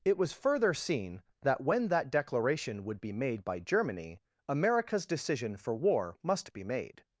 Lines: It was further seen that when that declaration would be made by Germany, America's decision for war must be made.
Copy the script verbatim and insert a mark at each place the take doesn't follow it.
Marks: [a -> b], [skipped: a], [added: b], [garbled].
It was further seen that when that declaration would be made by Germany, America's decision for war must be made.